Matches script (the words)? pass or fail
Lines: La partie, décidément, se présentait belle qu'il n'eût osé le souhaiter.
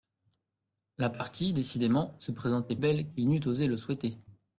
pass